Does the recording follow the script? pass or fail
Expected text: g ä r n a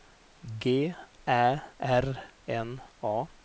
pass